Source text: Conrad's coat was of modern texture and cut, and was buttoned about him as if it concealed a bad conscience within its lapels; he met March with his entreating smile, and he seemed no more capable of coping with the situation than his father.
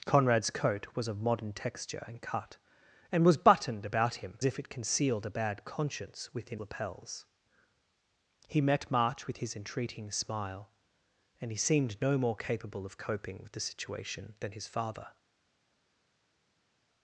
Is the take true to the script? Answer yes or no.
no